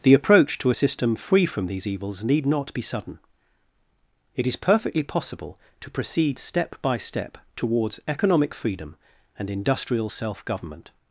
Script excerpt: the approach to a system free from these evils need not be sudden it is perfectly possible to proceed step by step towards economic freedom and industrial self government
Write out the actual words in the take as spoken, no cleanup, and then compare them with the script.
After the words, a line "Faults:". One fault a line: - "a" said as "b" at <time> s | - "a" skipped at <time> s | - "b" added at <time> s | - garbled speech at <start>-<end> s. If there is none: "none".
the approach to a system free from these evils need not be sudden it is perfectly possible to proceed step by step towards economic freedom and industrial self government
Faults:
none